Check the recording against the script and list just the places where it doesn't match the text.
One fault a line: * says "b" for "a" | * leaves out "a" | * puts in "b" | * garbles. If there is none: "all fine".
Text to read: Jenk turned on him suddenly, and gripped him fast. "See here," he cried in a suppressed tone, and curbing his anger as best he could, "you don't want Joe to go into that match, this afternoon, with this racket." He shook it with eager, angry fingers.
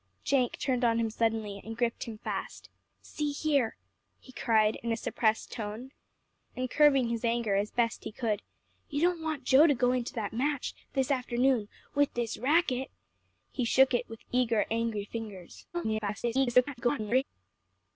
* garbles